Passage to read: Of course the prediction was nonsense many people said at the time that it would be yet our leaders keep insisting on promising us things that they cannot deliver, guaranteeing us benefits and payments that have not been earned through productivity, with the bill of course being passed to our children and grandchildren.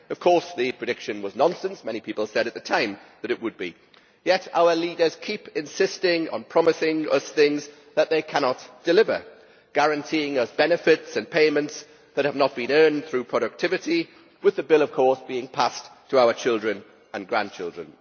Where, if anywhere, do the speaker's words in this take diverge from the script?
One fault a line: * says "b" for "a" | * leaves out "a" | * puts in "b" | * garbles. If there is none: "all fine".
all fine